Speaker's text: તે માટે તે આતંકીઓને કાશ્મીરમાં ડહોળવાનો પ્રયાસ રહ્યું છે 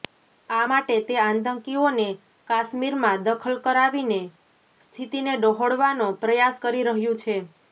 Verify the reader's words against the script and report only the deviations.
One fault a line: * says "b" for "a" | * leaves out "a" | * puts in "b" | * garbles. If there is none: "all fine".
* says "આ" for "તે"
* puts in "દખલ કરાવીને સ્થિતિને"
* puts in "કરી"